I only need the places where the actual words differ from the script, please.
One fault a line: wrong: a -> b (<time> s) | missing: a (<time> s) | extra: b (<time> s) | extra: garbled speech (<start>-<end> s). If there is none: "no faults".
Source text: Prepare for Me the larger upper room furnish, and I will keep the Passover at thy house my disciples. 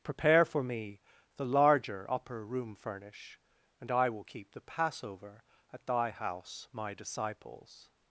no faults